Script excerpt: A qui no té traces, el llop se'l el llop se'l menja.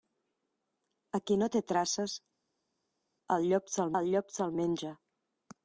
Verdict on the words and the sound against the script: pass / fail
pass